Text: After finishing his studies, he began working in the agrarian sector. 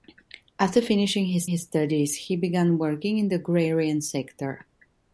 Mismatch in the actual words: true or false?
true